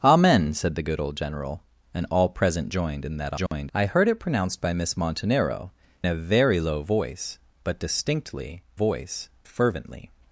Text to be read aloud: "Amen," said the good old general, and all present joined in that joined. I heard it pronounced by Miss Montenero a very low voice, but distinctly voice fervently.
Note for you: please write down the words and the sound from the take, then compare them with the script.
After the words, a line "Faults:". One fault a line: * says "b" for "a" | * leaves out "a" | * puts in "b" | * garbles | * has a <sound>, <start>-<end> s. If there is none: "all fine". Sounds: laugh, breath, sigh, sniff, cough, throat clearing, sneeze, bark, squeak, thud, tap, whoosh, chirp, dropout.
"Amen," said the good old general, and all present joined in that joined. I heard it pronounced by Miss Montenero a very low voice, but distinctly voice fervently.
Faults:
* has a dropout, 3.5-3.5 s